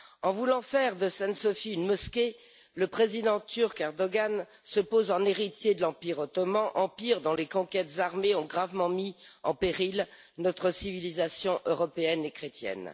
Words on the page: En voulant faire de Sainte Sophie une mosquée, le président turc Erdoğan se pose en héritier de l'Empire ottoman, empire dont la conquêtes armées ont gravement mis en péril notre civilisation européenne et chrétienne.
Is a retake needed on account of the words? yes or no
yes